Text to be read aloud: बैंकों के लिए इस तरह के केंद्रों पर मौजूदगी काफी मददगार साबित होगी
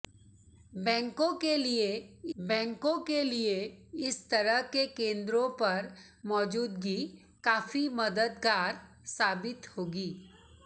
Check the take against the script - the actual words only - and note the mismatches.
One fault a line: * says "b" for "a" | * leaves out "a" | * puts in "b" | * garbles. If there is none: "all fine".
* puts in "बैंकों के लिए"